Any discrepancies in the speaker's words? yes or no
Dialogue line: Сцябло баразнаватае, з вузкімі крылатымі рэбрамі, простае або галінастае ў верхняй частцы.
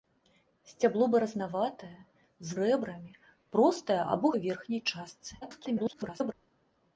yes